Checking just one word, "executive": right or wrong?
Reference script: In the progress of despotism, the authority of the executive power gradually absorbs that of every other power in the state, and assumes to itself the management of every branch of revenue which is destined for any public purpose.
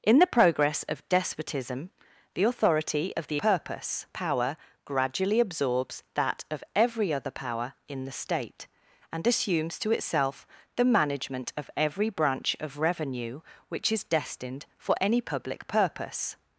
wrong